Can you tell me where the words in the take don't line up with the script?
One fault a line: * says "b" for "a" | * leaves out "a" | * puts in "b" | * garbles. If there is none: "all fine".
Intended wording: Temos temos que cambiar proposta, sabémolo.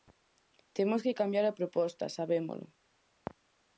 * leaves out "temos"
* puts in "a"